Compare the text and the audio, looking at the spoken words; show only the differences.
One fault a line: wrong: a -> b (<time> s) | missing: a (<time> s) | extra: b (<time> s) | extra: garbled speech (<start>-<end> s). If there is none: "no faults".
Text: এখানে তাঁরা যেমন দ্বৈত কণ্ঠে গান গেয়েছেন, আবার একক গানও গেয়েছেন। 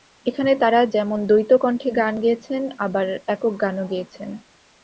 no faults